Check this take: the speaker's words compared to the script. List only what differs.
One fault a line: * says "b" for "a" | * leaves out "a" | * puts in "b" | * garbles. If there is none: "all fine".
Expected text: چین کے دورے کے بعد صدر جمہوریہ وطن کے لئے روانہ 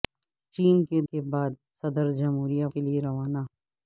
* leaves out "دورے"
* leaves out "وطن"